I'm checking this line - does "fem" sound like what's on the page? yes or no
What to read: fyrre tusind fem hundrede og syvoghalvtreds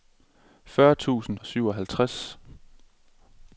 no